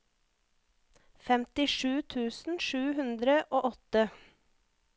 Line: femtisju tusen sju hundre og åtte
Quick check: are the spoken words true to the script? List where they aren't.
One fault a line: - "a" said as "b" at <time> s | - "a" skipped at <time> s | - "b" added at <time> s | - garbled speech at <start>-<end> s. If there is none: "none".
none